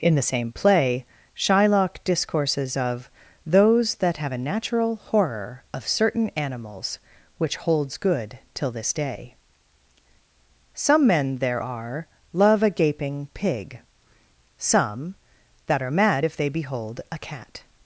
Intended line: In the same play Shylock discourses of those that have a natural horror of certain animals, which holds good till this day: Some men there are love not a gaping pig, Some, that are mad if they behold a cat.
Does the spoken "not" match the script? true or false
false